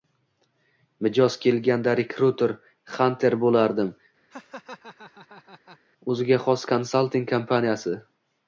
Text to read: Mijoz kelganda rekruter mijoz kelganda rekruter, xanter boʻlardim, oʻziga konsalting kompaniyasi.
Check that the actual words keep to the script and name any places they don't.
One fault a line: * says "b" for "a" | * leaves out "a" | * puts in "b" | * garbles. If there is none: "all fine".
* leaves out "mijoz kelganda rekruter"
* puts in "xos"